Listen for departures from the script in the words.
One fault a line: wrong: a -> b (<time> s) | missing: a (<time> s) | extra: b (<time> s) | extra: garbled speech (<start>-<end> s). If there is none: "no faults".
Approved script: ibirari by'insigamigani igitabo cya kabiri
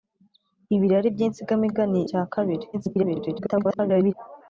missing: igitabo (2.0 s)
extra: garbled speech (2.7-4.1 s)